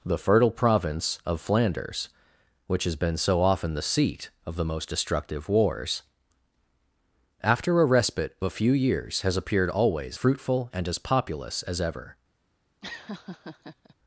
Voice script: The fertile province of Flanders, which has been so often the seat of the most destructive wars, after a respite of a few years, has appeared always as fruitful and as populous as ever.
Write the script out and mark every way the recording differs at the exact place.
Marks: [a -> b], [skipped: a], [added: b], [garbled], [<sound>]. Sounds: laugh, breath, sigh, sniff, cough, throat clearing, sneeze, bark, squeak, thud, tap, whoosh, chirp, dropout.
The fertile province of Flanders, which has been so often the seat of the most destructive wars, after a respite [skipped: of] a few years, has appeared always [skipped: as] fruitful and as populous as ever. [laugh]